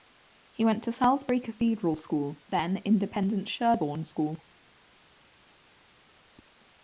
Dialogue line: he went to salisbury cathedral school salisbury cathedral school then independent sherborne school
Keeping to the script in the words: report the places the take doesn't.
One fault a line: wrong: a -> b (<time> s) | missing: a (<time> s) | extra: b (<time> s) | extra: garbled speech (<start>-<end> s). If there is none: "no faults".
missing: salisbury cathedral school (2.4 s)